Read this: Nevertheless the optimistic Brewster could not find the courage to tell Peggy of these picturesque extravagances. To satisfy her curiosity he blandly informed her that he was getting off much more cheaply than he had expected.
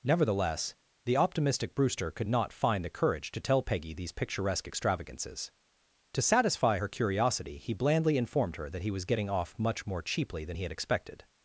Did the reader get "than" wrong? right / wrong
right